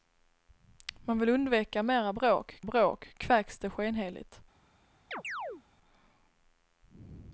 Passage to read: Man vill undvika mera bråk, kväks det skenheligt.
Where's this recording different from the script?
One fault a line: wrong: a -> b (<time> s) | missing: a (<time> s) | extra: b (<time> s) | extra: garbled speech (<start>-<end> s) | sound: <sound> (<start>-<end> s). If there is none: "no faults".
extra: bråk (2.6 s)
sound: chirp (5.1-5.6 s)